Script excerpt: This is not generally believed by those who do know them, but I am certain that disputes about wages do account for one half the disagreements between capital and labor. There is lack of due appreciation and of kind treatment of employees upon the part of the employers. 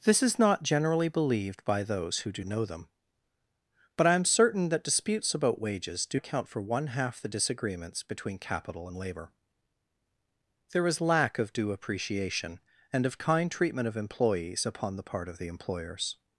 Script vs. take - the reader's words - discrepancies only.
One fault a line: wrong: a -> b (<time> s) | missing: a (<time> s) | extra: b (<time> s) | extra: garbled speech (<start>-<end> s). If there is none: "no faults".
no faults